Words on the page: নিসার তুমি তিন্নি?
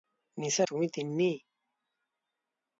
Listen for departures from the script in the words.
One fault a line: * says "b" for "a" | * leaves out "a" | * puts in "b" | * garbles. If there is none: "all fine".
all fine